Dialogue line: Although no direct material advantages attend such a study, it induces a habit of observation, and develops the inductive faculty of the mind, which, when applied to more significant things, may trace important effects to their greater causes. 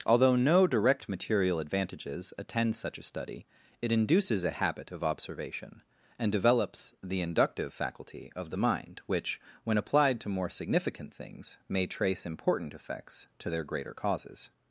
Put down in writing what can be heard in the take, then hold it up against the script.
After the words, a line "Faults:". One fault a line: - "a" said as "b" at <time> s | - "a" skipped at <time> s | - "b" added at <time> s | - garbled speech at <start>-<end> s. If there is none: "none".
Although no direct material advantages attend such a study, it induces a habit of observation, and develops the inductive faculty of the mind, which, when applied to more significant things, may trace important effects to their greater causes.
Faults:
none